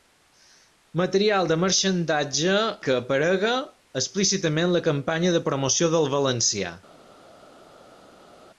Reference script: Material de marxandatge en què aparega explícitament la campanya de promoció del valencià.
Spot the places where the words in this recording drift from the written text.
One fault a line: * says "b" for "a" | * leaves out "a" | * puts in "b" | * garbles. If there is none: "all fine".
* leaves out "en"